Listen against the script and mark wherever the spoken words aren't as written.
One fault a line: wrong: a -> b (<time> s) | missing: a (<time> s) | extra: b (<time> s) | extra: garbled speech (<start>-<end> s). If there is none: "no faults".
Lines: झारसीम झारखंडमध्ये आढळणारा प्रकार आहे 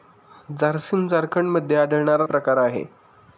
no faults